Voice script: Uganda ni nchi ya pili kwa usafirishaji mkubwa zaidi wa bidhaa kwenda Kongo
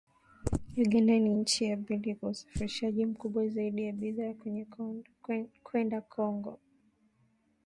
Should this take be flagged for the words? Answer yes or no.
no